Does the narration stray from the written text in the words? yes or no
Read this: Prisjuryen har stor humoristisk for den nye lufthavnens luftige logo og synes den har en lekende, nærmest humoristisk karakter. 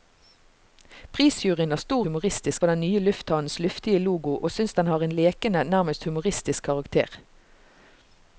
no